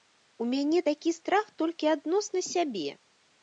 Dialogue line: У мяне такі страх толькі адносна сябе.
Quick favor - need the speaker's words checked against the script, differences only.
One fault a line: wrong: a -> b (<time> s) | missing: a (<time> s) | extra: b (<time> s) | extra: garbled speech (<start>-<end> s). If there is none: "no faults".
no faults